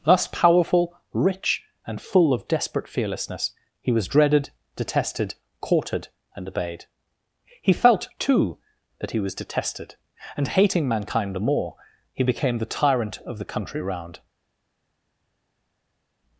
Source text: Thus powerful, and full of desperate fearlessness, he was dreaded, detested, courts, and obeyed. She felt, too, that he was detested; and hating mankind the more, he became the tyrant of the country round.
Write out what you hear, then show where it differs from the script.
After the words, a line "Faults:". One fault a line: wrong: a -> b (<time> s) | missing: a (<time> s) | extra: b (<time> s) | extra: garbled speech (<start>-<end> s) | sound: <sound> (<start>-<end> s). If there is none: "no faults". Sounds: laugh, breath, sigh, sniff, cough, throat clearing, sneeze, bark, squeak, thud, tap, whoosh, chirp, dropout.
Thus powerful, rich, and full of desperate fearlessness, he was dreaded, detested, courted, and obeyed. He felt, too, that he was detested; and hating mankind the more, he became the tyrant of the country round.
Faults:
extra: rich (1.1 s)
wrong: courts -> courted (5.6 s)
wrong: She -> He (7.6 s)